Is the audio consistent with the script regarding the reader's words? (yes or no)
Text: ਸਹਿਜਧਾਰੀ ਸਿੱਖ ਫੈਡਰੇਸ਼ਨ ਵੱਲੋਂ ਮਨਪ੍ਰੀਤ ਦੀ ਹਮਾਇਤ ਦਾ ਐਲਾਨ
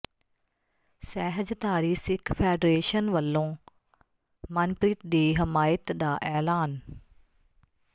yes